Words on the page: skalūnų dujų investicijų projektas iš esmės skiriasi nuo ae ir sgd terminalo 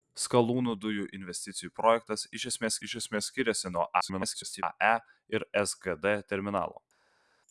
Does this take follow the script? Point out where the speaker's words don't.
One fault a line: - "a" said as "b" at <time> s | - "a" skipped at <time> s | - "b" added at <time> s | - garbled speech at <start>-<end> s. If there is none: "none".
- "iš esmės" added at 2.8 s
- garbled speech at 4.0-4.6 s